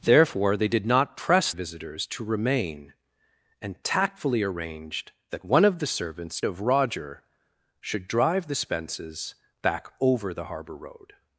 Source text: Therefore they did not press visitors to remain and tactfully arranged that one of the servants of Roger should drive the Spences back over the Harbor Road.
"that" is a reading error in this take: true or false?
false